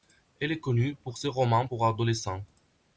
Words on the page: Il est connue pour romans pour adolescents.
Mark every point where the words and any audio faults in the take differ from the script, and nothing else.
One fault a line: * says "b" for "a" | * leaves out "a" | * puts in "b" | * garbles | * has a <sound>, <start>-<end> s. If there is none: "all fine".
* says "Elle" for "Il"
* puts in "ses"